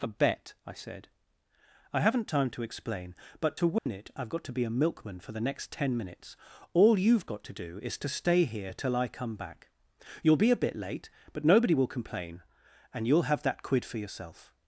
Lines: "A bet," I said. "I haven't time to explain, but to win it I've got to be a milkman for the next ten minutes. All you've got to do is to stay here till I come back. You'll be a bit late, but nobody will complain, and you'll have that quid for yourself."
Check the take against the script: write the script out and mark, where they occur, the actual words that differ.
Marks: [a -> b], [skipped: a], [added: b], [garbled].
"A bet," I said. "I haven't time to explain, but to win it I've got to be a milkman for the next ten minutes. All you've got to do is to stay here till I come back. You'll be a bit late, but nobody will complain, and you'll have that quid for yourself."